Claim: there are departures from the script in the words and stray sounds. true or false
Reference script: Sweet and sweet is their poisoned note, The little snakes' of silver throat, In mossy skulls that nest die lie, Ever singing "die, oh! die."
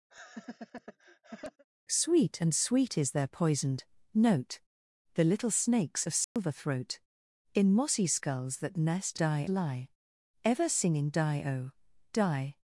true